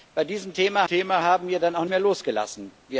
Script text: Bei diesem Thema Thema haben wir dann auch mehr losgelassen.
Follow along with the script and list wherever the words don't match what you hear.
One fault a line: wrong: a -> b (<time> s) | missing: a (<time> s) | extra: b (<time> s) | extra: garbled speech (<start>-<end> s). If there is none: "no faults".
no faults